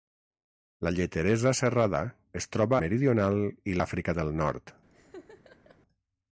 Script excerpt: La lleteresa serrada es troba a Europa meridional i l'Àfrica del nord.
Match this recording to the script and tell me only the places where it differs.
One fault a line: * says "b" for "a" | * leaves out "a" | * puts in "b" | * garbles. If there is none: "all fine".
* leaves out "a Europa"